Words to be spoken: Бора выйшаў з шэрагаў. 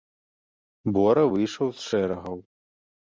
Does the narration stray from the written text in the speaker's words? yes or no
no